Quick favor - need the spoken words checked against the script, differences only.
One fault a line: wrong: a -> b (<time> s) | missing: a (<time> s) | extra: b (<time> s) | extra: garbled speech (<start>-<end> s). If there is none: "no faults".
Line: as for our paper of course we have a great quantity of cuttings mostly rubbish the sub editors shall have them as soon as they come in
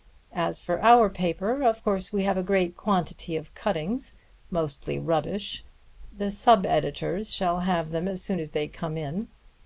no faults